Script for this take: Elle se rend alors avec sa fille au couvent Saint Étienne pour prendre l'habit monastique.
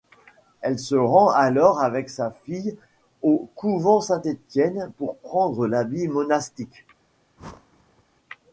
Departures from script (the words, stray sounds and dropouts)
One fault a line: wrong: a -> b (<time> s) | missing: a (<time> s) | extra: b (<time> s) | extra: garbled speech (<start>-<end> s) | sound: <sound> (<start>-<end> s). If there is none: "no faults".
sound: whoosh (7.4-8.0 s)